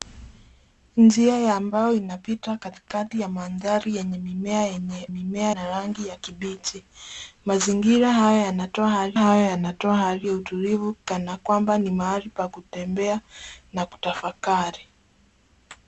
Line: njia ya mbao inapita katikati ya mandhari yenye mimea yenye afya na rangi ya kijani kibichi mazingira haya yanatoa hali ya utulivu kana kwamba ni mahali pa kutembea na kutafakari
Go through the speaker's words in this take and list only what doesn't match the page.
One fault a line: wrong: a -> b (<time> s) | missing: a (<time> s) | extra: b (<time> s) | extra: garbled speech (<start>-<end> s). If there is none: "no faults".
wrong: afya -> mimea (5.1 s)
missing: kijani (6.1 s)
extra: haya yanatoa hali (9.2 s)